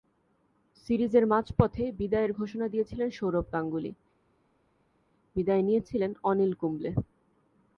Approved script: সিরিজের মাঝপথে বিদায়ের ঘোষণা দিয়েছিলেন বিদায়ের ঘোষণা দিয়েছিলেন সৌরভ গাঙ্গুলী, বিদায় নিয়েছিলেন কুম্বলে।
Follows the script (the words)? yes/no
no